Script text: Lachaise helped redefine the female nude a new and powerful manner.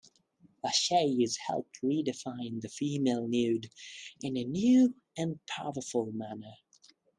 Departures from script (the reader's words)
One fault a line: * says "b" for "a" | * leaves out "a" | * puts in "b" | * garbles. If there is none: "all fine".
* puts in "in"